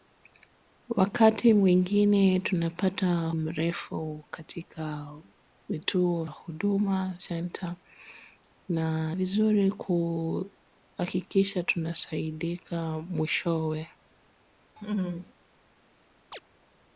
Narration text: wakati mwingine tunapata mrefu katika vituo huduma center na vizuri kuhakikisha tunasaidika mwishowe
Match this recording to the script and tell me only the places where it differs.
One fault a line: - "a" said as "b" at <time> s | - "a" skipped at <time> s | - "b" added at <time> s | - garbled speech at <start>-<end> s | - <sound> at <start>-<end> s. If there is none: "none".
- laugh at 14.8-15.3 s
- chirp at 16.3-16.4 s